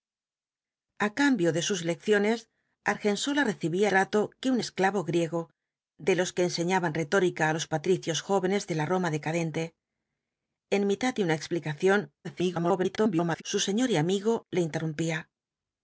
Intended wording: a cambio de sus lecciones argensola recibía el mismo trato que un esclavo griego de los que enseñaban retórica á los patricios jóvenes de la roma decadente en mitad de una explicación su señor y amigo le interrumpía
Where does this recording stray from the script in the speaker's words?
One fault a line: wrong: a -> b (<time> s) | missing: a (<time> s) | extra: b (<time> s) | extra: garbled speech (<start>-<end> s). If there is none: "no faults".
missing: el mismo (3.9 s)
extra: garbled speech (12.2-13.4 s)